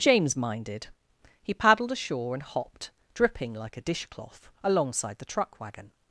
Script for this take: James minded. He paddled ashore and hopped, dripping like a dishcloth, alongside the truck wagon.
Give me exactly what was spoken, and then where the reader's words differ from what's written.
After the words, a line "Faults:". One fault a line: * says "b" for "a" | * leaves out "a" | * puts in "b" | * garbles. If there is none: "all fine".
James minded. He paddled ashore and hopped, dripping like a dishcloth, alongside the truck wagon.
Faults:
all fine